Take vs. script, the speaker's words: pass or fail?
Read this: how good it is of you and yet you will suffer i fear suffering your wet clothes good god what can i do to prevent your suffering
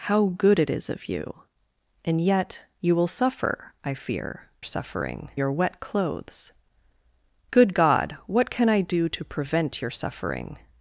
pass